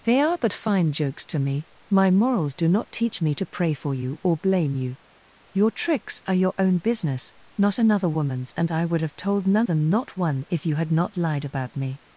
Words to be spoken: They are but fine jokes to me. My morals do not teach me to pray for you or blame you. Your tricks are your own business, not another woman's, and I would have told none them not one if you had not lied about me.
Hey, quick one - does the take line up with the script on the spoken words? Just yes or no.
yes